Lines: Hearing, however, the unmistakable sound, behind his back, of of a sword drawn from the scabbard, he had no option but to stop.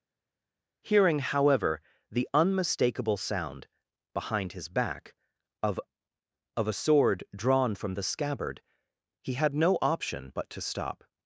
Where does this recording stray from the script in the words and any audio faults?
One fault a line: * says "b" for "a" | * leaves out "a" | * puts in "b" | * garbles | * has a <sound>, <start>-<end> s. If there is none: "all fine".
all fine